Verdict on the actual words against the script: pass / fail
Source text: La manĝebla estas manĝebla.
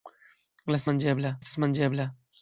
pass